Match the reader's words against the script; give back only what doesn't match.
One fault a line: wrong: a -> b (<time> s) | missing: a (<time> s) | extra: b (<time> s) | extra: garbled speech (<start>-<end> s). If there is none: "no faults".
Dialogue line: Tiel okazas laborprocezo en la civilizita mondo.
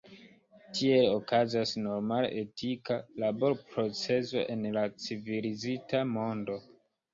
extra: normala etika (1.9 s)